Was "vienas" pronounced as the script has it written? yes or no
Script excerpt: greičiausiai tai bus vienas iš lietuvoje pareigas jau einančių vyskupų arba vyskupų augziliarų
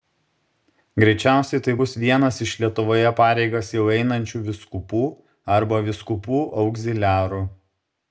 yes